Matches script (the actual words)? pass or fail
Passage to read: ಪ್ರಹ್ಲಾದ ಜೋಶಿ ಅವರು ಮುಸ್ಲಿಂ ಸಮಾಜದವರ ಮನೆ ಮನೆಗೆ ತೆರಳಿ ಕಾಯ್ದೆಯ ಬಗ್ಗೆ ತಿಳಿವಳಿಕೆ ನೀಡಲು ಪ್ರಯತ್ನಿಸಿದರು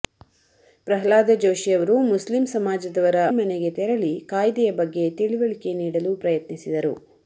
fail